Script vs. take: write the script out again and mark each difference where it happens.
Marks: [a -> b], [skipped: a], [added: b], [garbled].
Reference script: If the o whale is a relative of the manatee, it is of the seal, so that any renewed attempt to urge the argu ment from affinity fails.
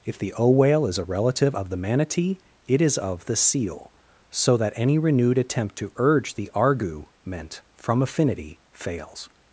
If the o whale is a relative of the manatee, it is of the seal, so that any renewed attempt to urge the argu ment from affinity fails.